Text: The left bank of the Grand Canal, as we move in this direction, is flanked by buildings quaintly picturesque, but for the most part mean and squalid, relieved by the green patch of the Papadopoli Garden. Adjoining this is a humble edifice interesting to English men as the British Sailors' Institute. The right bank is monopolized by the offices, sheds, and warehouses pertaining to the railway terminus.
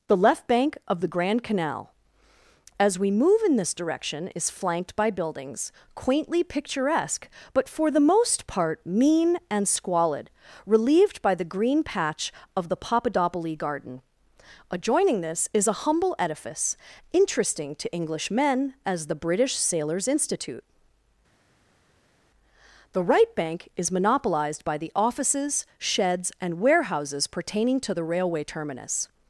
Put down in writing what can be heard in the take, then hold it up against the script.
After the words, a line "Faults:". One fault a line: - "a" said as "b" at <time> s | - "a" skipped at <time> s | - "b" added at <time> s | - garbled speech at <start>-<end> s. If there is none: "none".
The left bank of the Grand Canal, as we move in this direction, is flanked by buildings quaintly picturesque, but for the most part mean and squalid, relieved by the green patch of the Papadopoli Garden. Adjoining this is a humble edifice interesting to English men as the British Sailors' Institute. The right bank is monopolized by the offices, sheds, and warehouses pertaining to the railway terminus.
Faults:
none